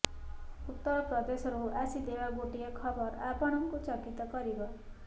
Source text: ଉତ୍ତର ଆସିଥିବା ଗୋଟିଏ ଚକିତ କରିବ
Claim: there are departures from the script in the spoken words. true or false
true